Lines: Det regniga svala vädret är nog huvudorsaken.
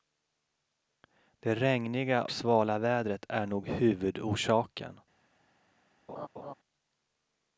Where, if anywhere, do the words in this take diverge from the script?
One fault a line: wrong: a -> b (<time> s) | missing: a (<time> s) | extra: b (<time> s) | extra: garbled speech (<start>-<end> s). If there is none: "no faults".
no faults